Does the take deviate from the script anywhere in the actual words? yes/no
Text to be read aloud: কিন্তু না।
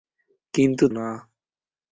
no